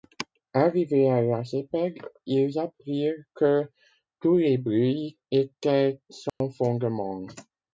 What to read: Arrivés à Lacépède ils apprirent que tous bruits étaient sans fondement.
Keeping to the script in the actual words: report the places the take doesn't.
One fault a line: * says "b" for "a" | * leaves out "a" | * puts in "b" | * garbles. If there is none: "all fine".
* puts in "les"